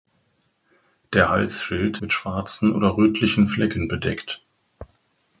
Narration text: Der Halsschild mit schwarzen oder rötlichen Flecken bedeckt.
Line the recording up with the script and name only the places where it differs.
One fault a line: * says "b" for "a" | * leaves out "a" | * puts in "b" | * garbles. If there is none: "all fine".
all fine